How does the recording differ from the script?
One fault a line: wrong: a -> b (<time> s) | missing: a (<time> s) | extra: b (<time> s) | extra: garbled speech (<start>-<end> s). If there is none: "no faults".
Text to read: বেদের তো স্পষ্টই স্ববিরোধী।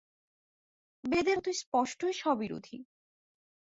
no faults